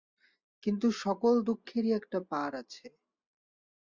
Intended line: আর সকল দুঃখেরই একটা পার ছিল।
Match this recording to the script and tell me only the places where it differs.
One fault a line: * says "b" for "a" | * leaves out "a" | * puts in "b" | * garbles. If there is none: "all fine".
* says "কিন্তু" for "আর"
* says "আছে" for "ছিল"